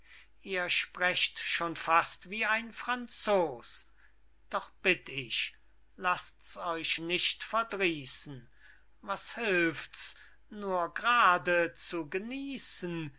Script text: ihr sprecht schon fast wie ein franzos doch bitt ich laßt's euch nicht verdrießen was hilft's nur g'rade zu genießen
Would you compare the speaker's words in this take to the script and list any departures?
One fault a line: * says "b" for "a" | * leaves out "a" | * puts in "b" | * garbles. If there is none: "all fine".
all fine